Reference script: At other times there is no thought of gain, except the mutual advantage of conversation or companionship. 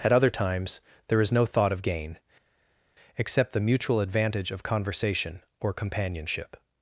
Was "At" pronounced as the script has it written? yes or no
yes